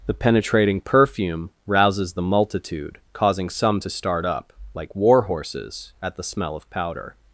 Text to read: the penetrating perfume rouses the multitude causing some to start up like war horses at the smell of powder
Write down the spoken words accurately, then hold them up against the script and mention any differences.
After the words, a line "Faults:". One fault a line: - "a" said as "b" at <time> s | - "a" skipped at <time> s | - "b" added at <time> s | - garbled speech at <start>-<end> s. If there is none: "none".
the penetrating perfume rouses the multitude causing some to start up like war horses at the smell of powder
Faults:
none